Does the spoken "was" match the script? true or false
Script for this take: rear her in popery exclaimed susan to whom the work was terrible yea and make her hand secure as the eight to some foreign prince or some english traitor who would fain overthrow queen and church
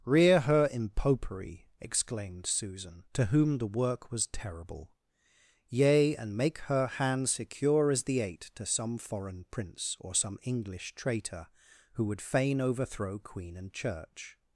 true